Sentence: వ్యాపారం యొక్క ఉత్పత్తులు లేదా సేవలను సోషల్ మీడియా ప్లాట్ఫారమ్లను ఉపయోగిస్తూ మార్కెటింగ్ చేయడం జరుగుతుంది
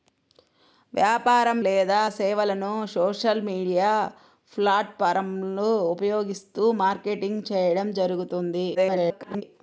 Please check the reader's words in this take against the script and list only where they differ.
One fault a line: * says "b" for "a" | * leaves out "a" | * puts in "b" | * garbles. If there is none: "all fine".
* leaves out "యొక్క ఉత్పత్తులు"
* garbles